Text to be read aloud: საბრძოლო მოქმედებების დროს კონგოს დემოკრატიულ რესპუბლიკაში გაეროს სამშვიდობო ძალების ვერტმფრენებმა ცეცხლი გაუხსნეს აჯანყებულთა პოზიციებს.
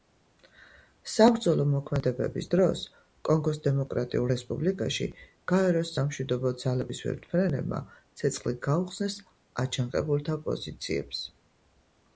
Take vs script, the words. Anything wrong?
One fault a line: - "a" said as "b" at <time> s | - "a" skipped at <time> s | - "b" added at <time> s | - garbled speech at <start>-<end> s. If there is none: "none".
none